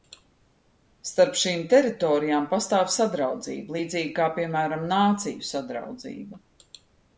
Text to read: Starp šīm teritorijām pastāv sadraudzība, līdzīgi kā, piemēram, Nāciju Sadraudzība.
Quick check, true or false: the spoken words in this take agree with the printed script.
true